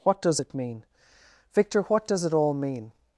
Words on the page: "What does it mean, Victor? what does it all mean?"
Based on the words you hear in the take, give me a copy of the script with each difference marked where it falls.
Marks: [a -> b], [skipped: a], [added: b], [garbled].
"What does it mean, Victor? what does it all mean?"